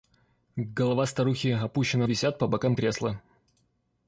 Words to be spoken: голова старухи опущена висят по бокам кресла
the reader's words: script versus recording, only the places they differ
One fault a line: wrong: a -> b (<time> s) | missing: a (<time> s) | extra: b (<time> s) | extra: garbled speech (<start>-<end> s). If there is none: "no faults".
no faults